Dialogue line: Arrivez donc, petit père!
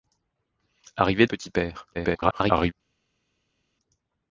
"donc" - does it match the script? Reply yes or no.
no